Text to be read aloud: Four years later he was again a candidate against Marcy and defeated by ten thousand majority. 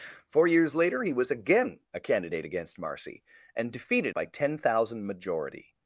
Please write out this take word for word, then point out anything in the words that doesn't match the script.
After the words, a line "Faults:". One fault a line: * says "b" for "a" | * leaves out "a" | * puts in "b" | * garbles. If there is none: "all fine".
Four years later he was again a candidate against Marcy and defeated by ten thousand majority.
Faults:
all fine